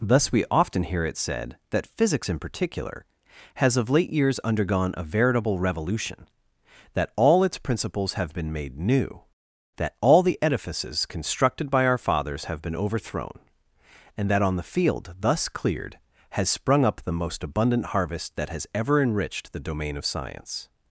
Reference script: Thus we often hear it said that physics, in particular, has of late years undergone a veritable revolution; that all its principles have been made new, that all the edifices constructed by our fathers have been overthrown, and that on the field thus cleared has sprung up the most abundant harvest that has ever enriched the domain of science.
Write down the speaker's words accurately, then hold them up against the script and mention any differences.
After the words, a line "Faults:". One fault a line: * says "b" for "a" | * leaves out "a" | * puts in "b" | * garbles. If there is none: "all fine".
Thus we often hear it said that physics, in particular, has of late years undergone a veritable revolution; that all its principles have been made new, that all the edifices constructed by our fathers have been overthrown, and that on the field thus cleared has sprung up the most abundant harvest that has ever enriched the domain of science.
Faults:
all fine